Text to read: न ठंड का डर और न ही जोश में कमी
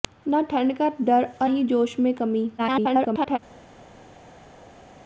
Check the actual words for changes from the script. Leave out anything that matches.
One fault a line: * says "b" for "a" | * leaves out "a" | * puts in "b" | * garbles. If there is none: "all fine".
* leaves out "न"
* garbles